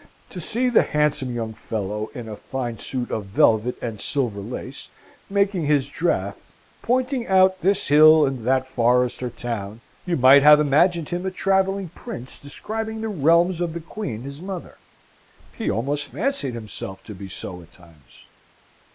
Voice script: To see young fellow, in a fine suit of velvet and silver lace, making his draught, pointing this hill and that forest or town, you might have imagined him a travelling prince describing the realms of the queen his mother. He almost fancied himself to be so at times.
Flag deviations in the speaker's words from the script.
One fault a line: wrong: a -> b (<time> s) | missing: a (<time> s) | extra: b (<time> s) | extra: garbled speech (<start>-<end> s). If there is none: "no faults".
extra: the handsome (0.7 s)
extra: out (7.3 s)